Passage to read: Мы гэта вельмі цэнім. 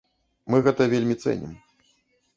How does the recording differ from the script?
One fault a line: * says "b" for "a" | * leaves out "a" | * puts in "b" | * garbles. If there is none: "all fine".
all fine